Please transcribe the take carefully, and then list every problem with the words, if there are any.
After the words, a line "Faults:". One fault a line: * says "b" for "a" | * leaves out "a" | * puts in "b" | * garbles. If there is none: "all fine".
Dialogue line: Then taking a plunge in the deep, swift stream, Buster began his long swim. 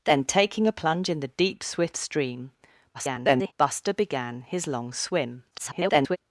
Then taking a plunge in the deep, swift stream, [garbled] Buster began his long swim. [garbled]
Faults:
* garbles
* garbles